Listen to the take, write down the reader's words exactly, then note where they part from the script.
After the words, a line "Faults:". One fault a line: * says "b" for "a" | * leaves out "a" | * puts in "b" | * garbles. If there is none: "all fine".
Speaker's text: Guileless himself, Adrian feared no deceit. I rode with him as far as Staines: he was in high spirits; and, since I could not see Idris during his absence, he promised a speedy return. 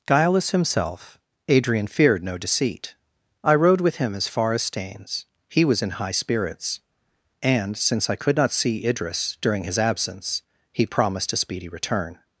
Guileless himself, Adrian feared no deceit. I rode with him as far as Staines: he was in high spirits; and, since I could not see Idris during his absence, he promised a speedy return.
Faults:
all fine